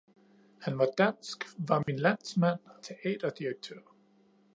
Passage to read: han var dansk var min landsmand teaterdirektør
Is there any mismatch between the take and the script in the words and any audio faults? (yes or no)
yes